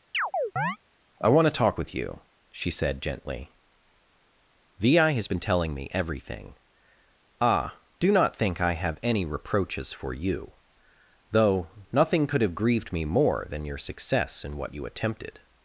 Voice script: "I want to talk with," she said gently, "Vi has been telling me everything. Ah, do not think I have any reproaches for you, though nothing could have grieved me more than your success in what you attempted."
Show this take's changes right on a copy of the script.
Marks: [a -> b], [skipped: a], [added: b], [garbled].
"I want to talk with," [added: you] she said gently, "Vi has been telling me everything. Ah, do not think I have any reproaches for you, though nothing could have grieved me more than your success in what you attempted."